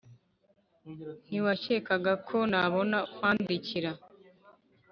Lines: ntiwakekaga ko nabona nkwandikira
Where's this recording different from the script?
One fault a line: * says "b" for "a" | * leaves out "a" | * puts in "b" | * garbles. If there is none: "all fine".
all fine